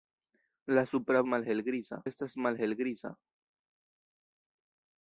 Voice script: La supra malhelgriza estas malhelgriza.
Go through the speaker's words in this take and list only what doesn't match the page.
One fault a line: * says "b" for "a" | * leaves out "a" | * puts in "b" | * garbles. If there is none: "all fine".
all fine